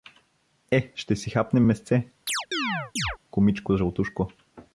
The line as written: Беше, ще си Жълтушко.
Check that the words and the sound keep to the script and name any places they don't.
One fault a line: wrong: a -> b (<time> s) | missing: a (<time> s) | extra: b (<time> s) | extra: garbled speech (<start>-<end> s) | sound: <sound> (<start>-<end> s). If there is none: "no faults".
wrong: Беше -> Е (0.7 s)
extra: хапнем месце кумичко (1.3 s)
sound: chirp (2.3-3.2 s)